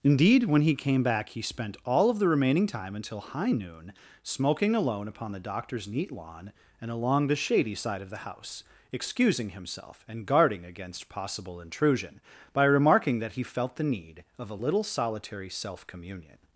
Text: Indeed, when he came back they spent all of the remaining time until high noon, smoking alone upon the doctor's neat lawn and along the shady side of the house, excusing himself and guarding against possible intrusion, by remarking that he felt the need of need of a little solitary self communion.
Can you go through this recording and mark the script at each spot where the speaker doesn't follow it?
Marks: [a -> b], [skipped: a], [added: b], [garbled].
Indeed, when he came back [they -> he] spent all of the remaining time until high noon, smoking alone upon the doctor's neat lawn and along the shady side of the house, excusing himself and guarding against possible intrusion, by remarking that he felt the need of [skipped: need of] a little solitary self communion.